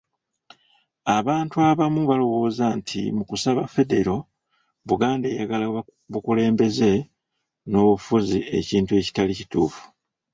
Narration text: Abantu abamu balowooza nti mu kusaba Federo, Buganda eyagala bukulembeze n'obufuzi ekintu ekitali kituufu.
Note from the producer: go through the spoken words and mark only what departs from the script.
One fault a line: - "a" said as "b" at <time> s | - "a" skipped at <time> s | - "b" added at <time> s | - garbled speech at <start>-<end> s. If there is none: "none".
none